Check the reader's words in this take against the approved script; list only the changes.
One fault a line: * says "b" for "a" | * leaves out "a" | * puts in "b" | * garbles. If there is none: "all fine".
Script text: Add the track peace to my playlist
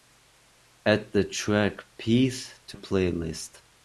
* leaves out "my"